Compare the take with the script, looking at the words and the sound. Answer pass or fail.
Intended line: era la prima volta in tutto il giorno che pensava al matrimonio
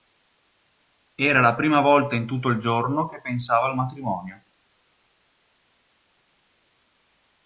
pass